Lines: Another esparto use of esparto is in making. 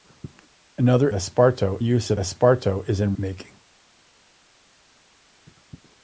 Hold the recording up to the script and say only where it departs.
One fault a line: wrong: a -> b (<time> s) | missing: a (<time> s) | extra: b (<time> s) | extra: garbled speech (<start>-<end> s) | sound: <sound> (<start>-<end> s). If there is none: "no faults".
no faults